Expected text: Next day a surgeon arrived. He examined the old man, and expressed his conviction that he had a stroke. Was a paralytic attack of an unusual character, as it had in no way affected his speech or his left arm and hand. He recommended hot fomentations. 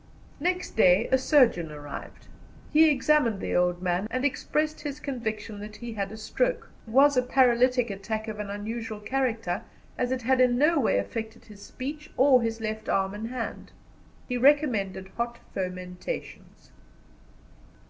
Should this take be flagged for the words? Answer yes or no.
no